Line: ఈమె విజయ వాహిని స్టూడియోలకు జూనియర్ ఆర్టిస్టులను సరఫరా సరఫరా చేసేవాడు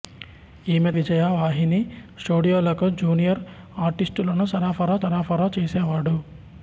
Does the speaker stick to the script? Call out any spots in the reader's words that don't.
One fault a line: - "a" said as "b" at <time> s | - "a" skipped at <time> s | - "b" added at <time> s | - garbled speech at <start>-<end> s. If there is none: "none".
none